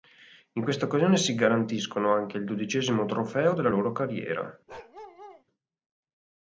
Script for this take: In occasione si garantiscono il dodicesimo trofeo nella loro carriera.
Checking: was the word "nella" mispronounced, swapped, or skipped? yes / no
yes